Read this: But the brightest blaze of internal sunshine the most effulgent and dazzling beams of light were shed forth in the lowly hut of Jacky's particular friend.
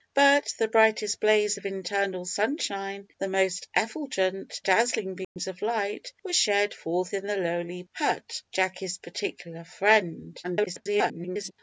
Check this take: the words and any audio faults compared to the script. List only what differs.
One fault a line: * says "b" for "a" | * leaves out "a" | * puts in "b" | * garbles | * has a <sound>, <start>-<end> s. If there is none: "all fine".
* leaves out "and"
* has a dropout, 5.2-5.4 s
* leaves out "of"
* garbles